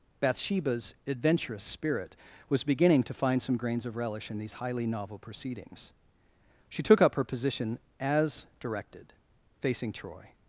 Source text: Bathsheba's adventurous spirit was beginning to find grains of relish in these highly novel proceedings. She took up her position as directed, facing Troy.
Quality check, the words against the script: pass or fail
fail